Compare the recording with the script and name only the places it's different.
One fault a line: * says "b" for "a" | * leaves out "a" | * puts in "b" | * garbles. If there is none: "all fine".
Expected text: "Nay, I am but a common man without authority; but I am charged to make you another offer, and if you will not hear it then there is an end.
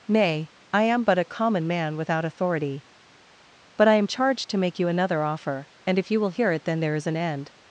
* leaves out "not"